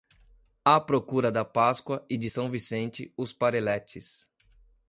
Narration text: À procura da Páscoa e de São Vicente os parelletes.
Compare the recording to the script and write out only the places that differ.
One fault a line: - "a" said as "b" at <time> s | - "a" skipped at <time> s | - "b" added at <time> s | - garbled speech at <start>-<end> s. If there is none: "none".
none